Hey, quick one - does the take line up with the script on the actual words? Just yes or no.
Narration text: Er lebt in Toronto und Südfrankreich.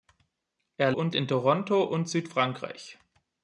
no